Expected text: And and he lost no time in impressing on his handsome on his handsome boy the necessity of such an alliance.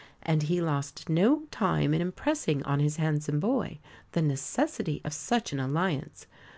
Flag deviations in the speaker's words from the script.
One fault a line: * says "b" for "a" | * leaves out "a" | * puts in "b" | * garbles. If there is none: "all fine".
* leaves out "and"
* leaves out "on his handsome"